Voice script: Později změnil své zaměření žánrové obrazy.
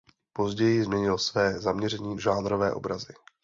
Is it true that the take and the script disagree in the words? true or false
false